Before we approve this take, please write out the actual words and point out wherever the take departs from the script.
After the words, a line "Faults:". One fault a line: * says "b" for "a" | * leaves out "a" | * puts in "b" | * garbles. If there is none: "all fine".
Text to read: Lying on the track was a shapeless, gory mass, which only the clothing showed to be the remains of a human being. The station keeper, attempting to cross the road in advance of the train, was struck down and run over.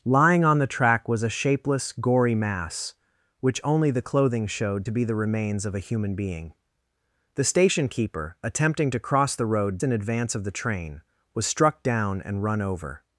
Lying on the track was a shapeless, gory mass, which only the clothing showed to be the remains of a human being. The station keeper, attempting to cross the road in advance of the train, was struck down and run over.
Faults:
all fine